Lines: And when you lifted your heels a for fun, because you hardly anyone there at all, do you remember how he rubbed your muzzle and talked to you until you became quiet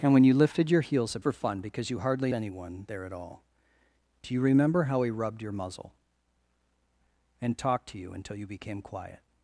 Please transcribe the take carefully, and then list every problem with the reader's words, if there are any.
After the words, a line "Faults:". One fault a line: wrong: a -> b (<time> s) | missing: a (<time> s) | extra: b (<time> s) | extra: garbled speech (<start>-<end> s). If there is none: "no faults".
And when you lifted your heels a for fun, because you hardly anyone there at all, do you remember how he rubbed your muzzle and talked to you until you became quiet
Faults:
no faults